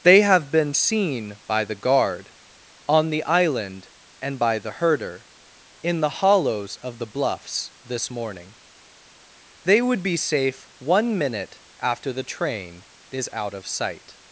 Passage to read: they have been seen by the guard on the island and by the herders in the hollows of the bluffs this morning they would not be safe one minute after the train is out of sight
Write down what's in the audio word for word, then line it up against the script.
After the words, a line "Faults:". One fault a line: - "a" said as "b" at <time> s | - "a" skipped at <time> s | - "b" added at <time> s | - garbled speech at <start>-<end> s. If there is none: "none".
they have been seen by the guard on the island and by the herder in the hollows of the bluffs this morning they would be safe one minute after the train is out of sight
Faults:
- "herders" said as "herder" at 4.7 s
- "not" skipped at 10.0 s